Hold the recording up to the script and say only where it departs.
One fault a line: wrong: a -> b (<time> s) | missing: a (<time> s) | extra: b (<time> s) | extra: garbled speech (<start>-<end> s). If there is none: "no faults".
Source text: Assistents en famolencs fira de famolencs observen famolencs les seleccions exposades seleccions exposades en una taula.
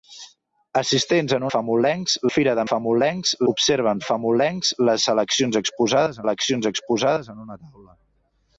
no faults